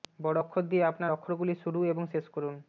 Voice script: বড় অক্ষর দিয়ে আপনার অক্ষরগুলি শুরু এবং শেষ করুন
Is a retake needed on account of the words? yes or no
no